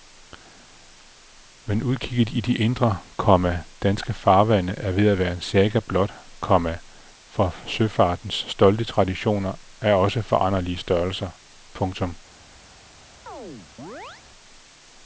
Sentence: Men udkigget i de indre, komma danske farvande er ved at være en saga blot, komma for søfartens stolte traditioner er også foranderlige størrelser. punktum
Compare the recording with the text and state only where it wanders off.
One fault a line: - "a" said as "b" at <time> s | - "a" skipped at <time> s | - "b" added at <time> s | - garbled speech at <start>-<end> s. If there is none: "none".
none